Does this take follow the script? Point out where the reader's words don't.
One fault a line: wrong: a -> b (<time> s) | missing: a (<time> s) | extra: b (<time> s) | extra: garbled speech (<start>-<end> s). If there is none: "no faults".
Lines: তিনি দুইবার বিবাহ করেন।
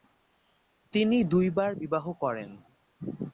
no faults